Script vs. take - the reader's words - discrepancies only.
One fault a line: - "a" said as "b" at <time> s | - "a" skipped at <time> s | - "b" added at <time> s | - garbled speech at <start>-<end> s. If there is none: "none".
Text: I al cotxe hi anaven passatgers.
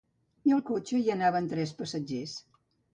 - "tres" added at 1.6 s